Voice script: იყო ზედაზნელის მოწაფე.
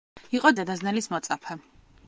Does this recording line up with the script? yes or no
yes